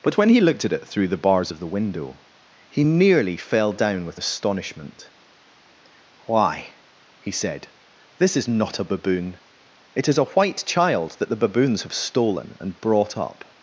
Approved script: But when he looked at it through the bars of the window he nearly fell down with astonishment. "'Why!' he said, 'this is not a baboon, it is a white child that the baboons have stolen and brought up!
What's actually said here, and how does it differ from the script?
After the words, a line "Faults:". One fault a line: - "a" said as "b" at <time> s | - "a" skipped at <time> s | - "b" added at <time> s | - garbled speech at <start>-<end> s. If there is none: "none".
But when he looked at it through the bars of the window he nearly fell down with astonishment. "'Why!' he said, 'this is not a baboon, it is a white child that the baboons have stolen and brought up!
Faults:
none